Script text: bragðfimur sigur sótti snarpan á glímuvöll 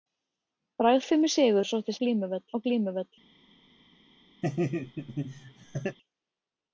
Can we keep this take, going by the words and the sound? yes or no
no